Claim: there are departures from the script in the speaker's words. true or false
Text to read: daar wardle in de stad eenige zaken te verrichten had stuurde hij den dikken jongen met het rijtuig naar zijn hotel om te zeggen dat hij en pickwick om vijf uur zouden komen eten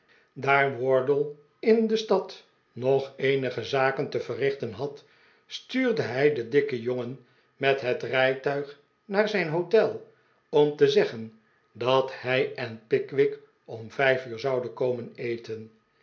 true